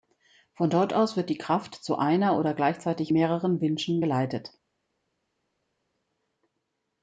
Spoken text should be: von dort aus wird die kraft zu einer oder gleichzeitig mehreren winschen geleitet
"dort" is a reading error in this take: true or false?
false